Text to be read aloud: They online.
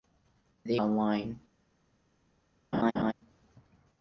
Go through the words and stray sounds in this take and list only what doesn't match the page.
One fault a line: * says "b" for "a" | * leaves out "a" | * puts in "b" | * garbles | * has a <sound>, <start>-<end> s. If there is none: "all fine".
* has a laugh, 2.7-3.1 s